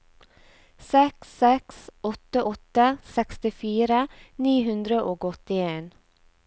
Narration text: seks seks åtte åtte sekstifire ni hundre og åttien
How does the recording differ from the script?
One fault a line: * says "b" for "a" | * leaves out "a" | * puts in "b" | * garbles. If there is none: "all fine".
all fine